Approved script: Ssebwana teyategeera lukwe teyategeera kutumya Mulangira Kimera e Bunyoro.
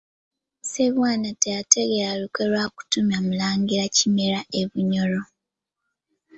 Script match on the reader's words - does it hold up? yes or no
no